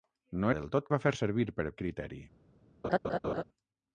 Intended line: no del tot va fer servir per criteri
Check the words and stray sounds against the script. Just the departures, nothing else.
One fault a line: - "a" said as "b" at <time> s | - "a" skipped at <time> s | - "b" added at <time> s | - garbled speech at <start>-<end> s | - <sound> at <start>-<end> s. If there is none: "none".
- laugh at 2.8-3.4 s